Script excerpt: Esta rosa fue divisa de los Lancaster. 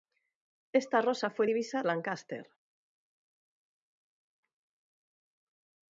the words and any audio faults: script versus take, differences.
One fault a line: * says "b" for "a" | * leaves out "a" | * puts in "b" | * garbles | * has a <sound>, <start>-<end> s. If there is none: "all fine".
* leaves out "de los"